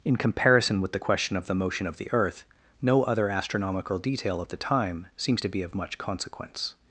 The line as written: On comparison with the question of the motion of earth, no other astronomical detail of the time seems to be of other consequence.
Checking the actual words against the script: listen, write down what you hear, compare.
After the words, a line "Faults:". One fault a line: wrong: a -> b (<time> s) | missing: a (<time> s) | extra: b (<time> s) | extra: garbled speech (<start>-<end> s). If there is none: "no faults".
In comparison with the question of the motion of the earth, no other astronomical detail of the time seems to be of much consequence.
Faults:
wrong: On -> In (0.0 s)
extra: the (2.0 s)
wrong: other -> much (5.7 s)